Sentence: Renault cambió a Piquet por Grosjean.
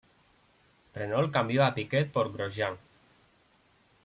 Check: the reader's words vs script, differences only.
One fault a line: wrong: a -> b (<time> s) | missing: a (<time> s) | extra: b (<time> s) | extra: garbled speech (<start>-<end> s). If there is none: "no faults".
no faults